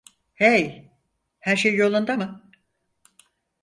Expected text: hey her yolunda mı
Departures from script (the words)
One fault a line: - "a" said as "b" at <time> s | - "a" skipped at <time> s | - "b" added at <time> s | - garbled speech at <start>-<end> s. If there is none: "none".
- "şey" added at 1.5 s